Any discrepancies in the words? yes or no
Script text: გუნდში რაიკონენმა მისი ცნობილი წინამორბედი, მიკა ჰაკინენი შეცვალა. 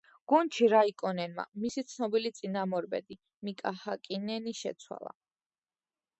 no